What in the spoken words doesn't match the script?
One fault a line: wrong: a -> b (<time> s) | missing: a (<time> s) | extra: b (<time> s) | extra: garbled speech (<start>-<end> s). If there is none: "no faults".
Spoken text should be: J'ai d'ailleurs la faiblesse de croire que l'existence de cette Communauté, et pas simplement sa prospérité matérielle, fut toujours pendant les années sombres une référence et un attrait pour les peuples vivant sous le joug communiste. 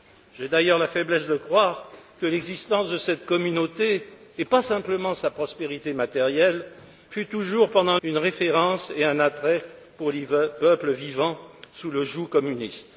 missing: les années sombres (8.0 s)